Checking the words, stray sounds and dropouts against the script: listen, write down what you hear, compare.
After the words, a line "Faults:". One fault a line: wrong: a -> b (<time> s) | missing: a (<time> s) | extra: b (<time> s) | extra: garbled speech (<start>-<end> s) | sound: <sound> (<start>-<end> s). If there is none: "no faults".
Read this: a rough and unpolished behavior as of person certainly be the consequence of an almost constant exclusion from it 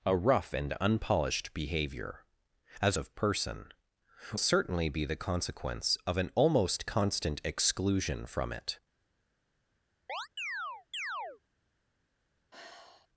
a rough and unpolished behavior as of person certainly be the consequence of an almost constant exclusion from it
Faults:
sound: chirp (10.1-11.4 s)
sound: sigh (12.5-13.1 s)